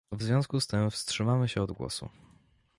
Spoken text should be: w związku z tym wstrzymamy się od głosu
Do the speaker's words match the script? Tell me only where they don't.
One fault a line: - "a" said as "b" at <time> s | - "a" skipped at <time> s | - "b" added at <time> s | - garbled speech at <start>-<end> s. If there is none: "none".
none